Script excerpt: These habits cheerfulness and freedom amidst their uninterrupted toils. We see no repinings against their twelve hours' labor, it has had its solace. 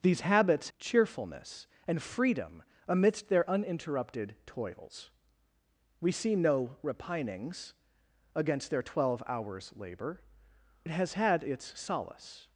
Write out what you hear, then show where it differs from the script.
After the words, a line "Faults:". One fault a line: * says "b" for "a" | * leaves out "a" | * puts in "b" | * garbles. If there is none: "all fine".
These habits cheerfulness and freedom amidst their uninterrupted toils. We see no repinings against their twelve hours' labor, it has had its solace.
Faults:
all fine